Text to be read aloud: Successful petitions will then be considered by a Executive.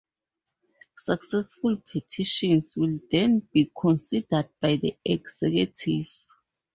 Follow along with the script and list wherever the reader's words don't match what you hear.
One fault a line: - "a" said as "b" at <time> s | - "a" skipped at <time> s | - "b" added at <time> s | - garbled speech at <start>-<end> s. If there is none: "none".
- "a" said as "the" at 4.8 s